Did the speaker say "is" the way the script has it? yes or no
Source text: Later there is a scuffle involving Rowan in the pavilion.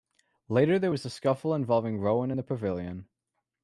no